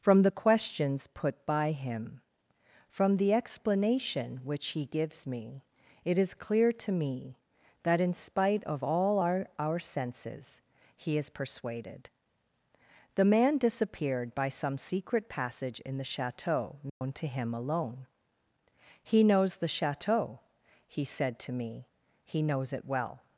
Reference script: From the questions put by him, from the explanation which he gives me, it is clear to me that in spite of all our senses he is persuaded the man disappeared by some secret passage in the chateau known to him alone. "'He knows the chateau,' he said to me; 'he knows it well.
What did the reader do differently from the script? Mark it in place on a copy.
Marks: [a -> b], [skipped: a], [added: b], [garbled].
From the questions put by him, from the explanation which he gives me, it is clear to me that in spite of all our [added: our] senses he is persuaded the man disappeared by some secret passage in the chateau known to him alone. "'He knows the chateau,' he said to me; 'he knows it well.